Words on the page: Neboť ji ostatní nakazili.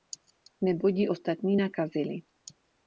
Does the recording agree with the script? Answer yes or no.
yes